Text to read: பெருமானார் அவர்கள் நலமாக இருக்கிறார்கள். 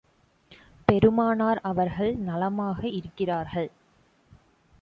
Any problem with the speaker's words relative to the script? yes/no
no